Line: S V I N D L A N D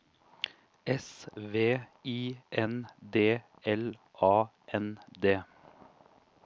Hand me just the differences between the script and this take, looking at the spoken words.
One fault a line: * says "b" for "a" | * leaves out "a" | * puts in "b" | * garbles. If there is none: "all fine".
all fine